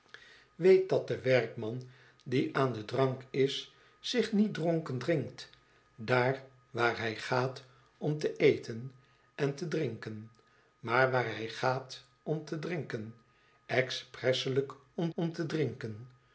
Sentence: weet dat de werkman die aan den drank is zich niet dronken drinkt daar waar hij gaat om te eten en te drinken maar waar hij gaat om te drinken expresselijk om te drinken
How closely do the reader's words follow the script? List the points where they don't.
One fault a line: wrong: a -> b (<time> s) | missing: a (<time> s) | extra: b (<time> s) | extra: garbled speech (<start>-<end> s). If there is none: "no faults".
extra: om (15.1 s)